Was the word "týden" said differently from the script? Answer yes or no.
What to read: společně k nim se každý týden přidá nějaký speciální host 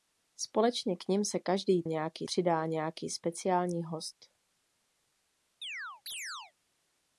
yes